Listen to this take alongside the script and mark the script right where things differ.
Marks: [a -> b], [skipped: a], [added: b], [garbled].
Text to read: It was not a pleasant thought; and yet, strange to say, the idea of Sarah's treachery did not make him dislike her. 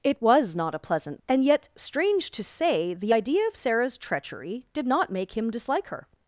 It was not a pleasant [skipped: thought;] and yet, strange to say, the idea of Sarah's treachery did not make him dislike her.